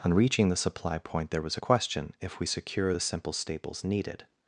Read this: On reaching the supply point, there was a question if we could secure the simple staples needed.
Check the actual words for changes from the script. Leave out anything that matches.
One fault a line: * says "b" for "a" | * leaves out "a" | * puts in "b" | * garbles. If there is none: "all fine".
* leaves out "could"